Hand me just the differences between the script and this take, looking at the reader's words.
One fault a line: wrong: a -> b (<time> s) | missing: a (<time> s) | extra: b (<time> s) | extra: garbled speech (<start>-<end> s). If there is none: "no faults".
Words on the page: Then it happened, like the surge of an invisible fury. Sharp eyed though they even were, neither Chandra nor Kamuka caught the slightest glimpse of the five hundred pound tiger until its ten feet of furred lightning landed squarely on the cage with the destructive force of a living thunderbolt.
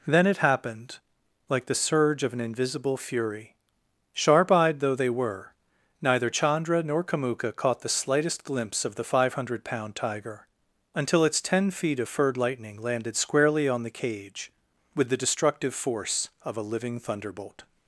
missing: even (5.1 s)